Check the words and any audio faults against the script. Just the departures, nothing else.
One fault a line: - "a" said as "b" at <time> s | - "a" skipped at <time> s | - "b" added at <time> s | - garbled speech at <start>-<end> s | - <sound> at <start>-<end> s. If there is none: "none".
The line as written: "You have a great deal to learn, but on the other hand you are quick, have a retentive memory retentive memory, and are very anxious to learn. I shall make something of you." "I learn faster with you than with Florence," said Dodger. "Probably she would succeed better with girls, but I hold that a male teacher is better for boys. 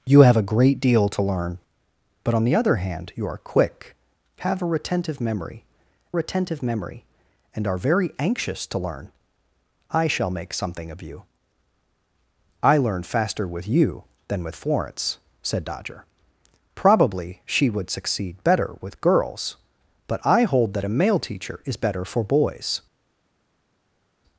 none